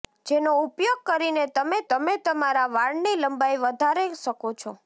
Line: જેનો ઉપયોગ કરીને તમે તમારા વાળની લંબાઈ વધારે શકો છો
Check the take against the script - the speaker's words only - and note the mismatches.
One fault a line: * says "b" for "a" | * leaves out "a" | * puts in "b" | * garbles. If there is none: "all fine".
* puts in "તમે"